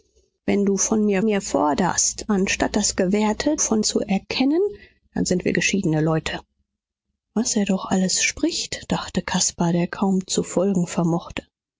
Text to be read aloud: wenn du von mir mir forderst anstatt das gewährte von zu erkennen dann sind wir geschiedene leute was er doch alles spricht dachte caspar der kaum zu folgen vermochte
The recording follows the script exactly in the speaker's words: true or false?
true